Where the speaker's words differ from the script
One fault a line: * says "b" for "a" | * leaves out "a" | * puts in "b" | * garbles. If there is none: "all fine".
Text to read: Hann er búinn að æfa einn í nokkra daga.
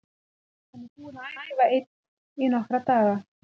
* puts in "að"